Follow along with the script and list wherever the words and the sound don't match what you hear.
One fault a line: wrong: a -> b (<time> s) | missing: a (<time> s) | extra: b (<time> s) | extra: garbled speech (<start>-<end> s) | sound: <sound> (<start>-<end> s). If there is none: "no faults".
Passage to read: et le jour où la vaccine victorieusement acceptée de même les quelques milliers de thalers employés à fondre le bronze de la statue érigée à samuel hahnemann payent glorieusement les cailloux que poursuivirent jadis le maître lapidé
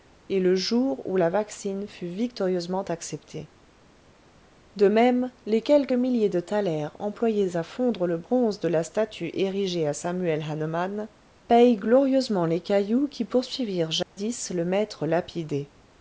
extra: fut (1.9 s)
wrong: que -> qui (13.1 s)
sound: dropout (14.0-14.2 s)